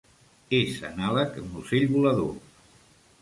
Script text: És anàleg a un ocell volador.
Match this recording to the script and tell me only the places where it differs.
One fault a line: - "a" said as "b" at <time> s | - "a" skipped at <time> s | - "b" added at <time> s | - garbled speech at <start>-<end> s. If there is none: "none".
none